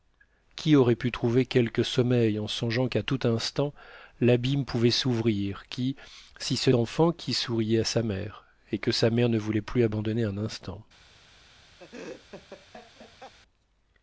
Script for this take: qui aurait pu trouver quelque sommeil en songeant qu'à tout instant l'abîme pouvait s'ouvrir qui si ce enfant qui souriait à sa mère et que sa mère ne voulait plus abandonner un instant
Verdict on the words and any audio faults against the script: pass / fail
fail